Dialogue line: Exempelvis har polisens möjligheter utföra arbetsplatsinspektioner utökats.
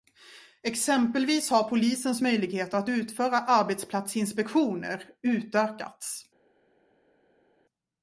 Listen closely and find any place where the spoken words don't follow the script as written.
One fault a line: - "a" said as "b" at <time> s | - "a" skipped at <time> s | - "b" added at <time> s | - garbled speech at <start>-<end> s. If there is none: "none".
- "att" added at 2.7 s